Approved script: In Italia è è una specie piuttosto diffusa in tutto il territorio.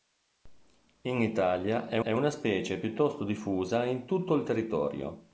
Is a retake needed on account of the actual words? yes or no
no